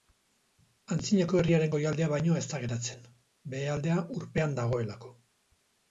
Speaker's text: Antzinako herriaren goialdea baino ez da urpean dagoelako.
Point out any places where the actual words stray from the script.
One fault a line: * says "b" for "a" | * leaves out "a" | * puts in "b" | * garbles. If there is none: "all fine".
* puts in "geratzen behealdea"